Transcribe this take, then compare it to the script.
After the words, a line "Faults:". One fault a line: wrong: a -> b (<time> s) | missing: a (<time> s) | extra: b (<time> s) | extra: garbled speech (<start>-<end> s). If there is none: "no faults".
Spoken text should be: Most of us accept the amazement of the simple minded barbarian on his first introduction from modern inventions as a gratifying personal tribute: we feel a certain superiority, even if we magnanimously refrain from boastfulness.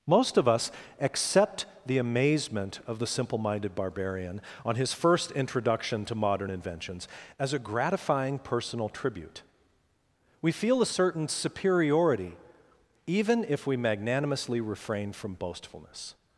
Most of us accept the amazement of the simple minded barbarian on his first introduction to modern inventions as a gratifying personal tribute: we feel a certain superiority, even if we magnanimously refrain from boastfulness.
Faults:
wrong: from -> to (6.0 s)